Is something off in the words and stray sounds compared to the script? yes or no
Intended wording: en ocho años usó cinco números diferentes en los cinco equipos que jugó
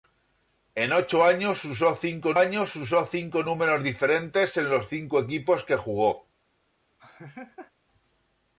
yes